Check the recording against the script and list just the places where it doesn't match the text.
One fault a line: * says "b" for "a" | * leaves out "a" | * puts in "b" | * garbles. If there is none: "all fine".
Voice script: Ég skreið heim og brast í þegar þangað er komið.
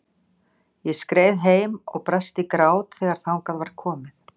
* puts in "grát"
* says "var" for "er"